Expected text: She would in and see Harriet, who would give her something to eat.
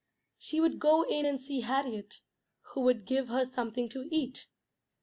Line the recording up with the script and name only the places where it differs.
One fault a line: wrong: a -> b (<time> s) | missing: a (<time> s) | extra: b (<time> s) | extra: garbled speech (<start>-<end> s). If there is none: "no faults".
extra: go (0.8 s)